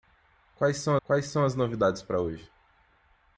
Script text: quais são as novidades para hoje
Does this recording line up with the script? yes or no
no